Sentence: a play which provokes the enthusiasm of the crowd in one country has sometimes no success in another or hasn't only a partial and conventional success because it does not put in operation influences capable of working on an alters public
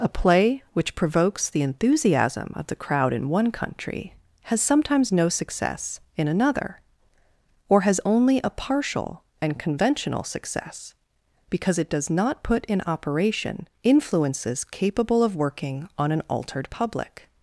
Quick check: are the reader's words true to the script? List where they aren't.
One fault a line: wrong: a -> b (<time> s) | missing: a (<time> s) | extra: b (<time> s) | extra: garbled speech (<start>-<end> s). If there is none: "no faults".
wrong: hasn't -> has (7.8 s)
wrong: alters -> altered (16.3 s)